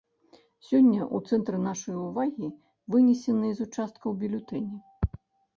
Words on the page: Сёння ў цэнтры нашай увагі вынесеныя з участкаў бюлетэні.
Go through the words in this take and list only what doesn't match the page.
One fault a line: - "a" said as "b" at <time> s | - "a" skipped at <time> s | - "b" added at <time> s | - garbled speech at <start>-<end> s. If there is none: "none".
none